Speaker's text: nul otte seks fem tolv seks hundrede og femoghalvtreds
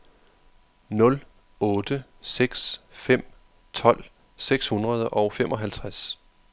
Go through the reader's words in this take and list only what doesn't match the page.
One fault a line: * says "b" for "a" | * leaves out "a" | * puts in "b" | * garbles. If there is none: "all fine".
all fine